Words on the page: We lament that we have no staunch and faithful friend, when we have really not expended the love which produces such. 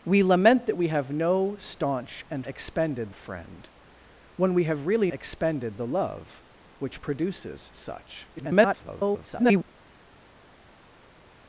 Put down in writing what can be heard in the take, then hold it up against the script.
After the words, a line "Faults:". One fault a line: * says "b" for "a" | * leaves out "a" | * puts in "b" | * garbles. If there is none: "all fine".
We lament that we have no staunch and expended friend, when we have really expended the love which produces such. [garbled]
Faults:
* says "expended" for "faithful"
* leaves out "not"
* garbles